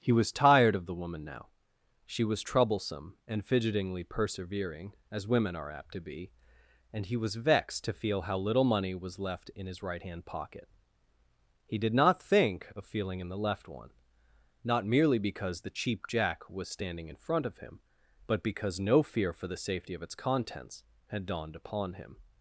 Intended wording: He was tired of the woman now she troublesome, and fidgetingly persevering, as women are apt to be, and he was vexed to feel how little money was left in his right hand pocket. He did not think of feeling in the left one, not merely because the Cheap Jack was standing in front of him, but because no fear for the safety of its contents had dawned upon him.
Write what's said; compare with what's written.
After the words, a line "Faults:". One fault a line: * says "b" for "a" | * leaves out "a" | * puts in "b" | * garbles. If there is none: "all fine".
He was tired of the woman now she was troublesome, and fidgetingly persevering, as women are apt to be, and he was vexed to feel how little money was left in his right hand pocket. He did not think of feeling in the left one, not merely because the Cheap Jack was standing in front of him, but because no fear for the safety of its contents had dawned upon him.
Faults:
* puts in "was"